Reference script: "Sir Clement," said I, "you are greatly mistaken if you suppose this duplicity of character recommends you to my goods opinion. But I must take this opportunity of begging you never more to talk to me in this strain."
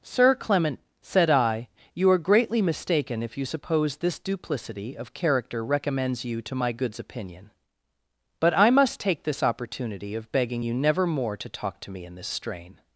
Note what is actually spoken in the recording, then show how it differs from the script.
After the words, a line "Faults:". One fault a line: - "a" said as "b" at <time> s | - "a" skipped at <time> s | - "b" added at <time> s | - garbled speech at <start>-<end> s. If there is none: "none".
"Sir Clement," said I, "you are greatly mistaken if you suppose this duplicity of character recommends you to my goods opinion. But I must take this opportunity of begging you never more to talk to me in this strain."
Faults:
none